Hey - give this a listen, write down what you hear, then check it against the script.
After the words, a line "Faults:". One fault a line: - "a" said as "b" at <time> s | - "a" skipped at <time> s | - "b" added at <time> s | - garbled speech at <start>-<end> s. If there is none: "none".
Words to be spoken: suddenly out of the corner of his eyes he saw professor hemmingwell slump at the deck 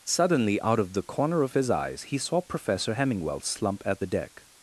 suddenly out of the corner of his eyes he saw professor hemmingwell slump at the deck
Faults:
none